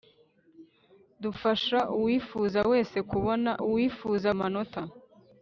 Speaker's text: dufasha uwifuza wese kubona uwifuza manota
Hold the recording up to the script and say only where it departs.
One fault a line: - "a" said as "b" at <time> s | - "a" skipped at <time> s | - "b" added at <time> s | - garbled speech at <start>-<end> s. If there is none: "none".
none